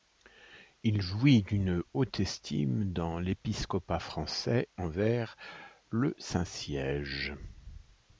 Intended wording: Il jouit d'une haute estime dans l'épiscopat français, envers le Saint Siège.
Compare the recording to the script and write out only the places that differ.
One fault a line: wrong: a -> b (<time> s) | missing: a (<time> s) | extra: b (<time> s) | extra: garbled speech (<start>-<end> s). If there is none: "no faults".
no faults